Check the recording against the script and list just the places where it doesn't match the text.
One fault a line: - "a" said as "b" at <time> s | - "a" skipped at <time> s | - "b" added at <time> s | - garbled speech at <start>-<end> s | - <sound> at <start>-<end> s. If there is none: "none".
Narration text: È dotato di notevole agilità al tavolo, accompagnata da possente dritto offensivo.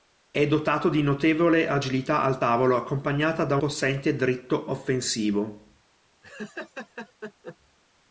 - laugh at 6.2-7.6 s